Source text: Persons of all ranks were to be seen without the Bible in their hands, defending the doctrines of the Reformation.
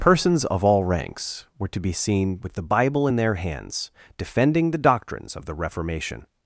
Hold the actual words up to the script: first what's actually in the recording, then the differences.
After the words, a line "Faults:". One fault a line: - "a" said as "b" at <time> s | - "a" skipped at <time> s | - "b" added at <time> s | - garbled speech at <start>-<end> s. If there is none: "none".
Persons of all ranks were to be seen with the Bible in their hands, defending the doctrines of the Reformation.
Faults:
- "without" said as "with" at 2.4 s